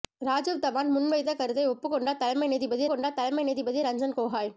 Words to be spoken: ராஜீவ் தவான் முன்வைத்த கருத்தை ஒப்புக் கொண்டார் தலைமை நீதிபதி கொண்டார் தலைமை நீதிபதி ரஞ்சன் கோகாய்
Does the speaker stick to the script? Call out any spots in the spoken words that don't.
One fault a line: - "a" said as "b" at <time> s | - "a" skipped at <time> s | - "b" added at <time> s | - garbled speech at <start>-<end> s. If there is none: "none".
none